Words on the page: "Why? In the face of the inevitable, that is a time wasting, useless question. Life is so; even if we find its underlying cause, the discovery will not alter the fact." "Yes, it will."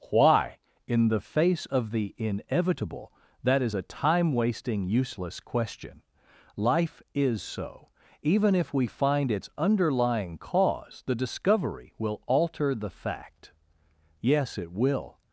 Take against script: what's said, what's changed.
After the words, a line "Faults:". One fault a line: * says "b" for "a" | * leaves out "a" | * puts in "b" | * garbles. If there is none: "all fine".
"Why? In the face of the inevitable, that is a time wasting, useless question. Life is so; even if we find its underlying cause, the discovery will alter the fact." "Yes, it will."
Faults:
* leaves out "not"